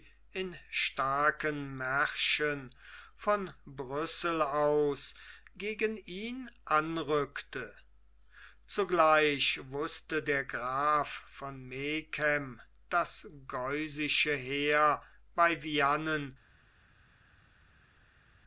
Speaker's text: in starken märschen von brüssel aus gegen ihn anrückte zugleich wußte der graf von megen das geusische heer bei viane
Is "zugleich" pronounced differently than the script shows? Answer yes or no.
no